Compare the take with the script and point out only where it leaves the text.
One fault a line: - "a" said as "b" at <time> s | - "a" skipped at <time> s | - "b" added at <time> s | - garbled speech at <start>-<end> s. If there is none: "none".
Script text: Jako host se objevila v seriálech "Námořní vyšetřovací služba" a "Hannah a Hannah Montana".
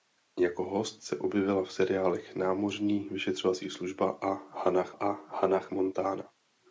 none